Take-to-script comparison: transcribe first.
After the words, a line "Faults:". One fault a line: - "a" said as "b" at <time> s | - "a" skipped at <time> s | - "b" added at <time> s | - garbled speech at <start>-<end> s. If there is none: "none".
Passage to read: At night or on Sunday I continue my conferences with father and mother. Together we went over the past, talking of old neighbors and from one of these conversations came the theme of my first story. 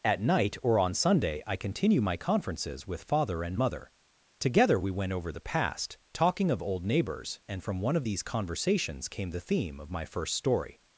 At night or on Sunday I continue my conferences with father and mother. Together we went over the past, talking of old neighbors and from one of these conversations came the theme of my first story.
Faults:
none